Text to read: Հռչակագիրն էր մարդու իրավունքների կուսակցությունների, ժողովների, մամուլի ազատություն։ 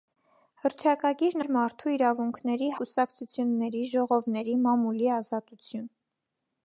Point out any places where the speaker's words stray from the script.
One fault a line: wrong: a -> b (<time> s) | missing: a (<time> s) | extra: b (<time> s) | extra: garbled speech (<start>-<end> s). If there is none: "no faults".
no faults